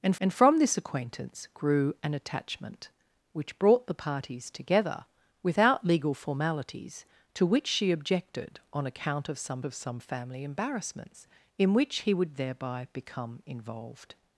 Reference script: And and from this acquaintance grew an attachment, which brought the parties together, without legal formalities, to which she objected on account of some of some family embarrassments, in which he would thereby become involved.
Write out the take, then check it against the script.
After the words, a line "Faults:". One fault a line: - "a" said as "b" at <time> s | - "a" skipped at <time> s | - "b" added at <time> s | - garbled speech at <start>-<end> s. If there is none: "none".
And and from this acquaintance grew an attachment, which brought the parties together, without legal formalities, to which she objected on account of some of some family embarrassments, in which he would thereby become involved.
Faults:
none